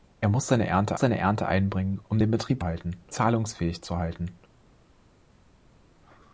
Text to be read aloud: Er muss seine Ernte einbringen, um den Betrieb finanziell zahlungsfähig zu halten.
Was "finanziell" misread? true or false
true